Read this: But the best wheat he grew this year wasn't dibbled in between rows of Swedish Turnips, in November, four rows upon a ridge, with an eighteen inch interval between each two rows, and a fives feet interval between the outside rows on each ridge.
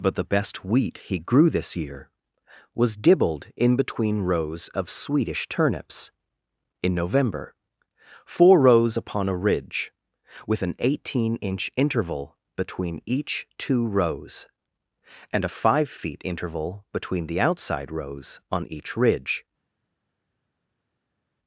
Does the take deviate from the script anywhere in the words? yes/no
yes